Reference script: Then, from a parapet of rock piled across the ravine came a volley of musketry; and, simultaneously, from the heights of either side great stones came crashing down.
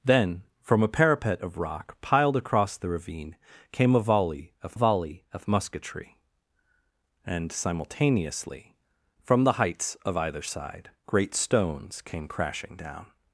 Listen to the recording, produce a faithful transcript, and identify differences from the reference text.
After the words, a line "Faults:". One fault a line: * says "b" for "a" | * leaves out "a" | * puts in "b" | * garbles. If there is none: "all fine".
Then, from a parapet of rock piled across the ravine came a volley of volley of musketry; and, simultaneously, from the heights of either side great stones came crashing down.
Faults:
* puts in "volley of"